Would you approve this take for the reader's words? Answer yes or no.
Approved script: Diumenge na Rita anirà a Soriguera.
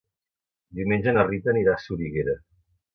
yes